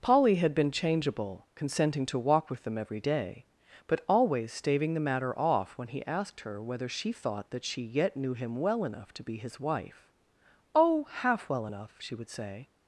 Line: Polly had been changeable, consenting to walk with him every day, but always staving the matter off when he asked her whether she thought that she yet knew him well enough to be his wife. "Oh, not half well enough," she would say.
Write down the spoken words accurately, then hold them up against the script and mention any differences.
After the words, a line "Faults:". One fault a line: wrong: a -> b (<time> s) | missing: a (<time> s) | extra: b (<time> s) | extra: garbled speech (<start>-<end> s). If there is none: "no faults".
Polly had been changeable, consenting to walk with them every day, but always staving the matter off when he asked her whether she thought that she yet knew him well enough to be his wife. "Oh, half well enough," she would say.
Faults:
wrong: him -> them (2.6 s)
missing: not (11.0 s)